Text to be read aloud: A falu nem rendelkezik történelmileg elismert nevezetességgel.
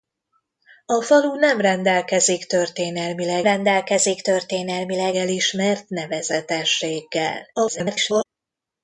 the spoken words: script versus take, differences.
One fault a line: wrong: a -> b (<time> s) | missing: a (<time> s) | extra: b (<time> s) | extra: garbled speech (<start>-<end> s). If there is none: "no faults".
extra: rendelkezik történelmileg (3.4 s)
extra: garbled speech (7.5-8.3 s)